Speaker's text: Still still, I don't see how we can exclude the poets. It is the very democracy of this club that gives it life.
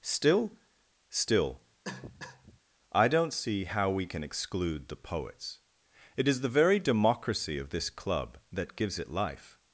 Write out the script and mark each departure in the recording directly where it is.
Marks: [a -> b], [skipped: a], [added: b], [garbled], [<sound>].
Still still, [cough] I don't see how we can exclude the poets. It is the very democracy of this club that gives it life.